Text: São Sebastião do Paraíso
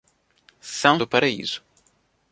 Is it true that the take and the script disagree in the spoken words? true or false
true